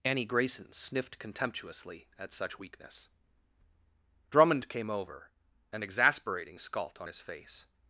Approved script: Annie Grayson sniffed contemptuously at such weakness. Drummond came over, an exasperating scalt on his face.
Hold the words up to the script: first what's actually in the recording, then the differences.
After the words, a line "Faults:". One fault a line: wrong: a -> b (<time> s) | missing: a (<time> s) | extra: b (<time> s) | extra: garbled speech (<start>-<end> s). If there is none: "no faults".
Annie Grayson sniffed contemptuously at such weakness. Drummond came over, an exasperating scalt on his face.
Faults:
no faults